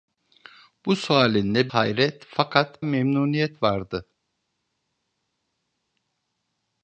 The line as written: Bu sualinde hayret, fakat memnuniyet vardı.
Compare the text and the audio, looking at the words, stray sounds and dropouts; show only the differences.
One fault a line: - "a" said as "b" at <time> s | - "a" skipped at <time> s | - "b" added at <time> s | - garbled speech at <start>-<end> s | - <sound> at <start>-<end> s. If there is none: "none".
none